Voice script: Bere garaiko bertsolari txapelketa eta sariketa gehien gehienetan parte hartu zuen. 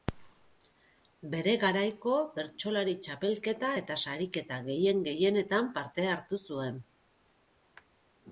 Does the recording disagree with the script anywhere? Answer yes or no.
no